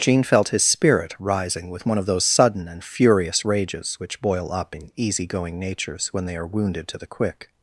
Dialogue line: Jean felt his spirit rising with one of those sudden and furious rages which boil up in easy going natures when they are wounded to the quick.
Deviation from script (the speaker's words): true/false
false